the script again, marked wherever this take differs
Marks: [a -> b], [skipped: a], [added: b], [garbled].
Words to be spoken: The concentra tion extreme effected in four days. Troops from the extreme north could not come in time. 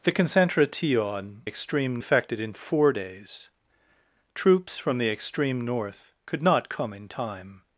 The concentra tion extreme effected in four days. Troops from the extreme north could not come in time.